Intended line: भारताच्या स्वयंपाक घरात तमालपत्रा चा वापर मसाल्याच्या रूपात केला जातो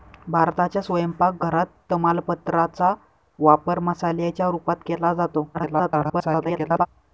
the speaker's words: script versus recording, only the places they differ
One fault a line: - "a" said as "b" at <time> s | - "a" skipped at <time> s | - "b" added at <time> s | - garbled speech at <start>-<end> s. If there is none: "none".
- garbled speech at 5.5-6.9 s